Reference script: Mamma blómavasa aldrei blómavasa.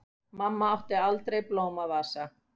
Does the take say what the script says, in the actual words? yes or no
no